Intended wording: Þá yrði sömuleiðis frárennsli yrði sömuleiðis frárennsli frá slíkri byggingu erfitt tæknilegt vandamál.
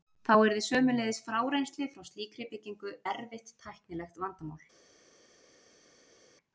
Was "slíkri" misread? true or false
false